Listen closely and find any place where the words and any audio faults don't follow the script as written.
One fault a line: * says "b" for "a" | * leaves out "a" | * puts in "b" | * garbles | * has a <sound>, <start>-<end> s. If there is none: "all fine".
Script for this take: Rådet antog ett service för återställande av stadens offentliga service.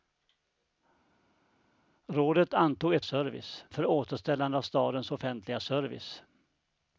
all fine